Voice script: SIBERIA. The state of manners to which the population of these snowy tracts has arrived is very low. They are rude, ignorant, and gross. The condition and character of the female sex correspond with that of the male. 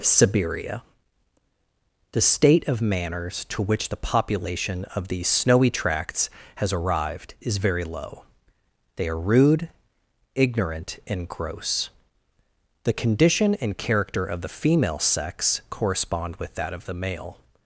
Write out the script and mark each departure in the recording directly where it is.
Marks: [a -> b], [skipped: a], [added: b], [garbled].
SIBERIA. The state of manners to which the population of these snowy tracts has arrived is very low. They are rude, ignorant, and gross. The condition and character of the female sex correspond with that of the male.